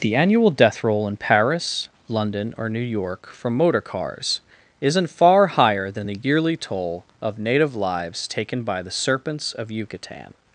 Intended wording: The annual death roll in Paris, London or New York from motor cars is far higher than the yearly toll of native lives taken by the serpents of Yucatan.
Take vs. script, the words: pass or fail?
fail